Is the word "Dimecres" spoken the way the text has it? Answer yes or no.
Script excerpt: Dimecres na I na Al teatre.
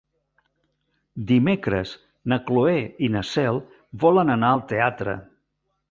yes